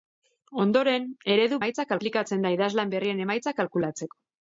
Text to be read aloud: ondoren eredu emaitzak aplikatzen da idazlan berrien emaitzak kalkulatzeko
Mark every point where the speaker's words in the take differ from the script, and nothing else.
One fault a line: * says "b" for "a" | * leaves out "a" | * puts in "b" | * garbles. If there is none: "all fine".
all fine